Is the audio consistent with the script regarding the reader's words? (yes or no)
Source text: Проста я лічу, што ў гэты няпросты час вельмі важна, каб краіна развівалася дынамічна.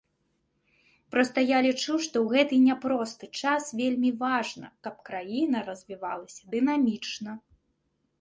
yes